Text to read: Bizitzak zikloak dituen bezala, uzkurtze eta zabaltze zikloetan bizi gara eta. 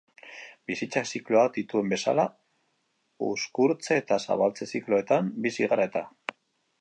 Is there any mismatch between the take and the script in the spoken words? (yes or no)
no